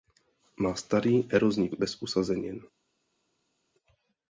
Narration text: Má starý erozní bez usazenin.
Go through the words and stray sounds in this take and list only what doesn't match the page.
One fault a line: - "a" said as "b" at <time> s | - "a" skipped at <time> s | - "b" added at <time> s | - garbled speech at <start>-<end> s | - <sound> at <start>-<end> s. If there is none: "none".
none